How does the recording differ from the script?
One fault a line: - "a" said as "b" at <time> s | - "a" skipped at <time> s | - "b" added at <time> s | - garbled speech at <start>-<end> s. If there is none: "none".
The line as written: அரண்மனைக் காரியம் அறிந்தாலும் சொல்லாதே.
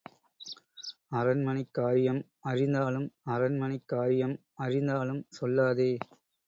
- "அரண்மனைக் காரியம் அறிந்தாலும்" added at 3.3 s